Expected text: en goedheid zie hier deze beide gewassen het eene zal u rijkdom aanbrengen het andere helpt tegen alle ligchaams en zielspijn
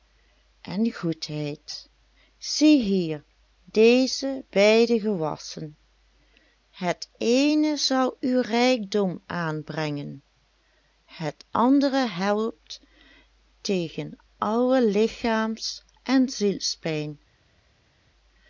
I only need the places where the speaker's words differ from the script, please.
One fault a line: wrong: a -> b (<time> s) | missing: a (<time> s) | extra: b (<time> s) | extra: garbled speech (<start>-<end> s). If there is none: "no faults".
no faults